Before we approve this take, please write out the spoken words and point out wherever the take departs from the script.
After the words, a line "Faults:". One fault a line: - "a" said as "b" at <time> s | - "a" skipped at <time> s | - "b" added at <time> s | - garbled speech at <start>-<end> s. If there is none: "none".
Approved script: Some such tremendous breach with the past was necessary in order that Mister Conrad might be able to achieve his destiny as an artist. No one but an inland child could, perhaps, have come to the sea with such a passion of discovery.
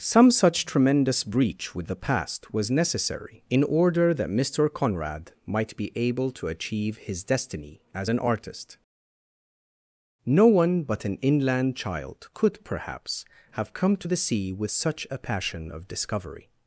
Some such tremendous breach with the past was necessary in order that Mister Conrad might be able to achieve his destiny as an artist. No one but an inland child could, perhaps, have come to the sea with such a passion of discovery.
Faults:
none